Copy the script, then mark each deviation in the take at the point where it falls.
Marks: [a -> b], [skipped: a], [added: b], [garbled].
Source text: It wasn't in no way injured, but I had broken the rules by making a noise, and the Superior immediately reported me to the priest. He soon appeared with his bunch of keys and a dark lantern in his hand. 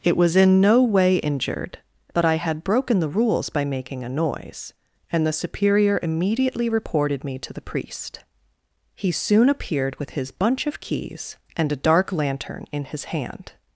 It [wasn't -> was] in no way injured, but I had broken the rules by making a noise, and the Superior immediately reported me to the priest. He soon appeared with his bunch of keys and a dark lantern in his hand.